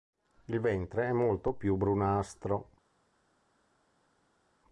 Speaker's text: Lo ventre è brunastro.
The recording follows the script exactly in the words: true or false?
false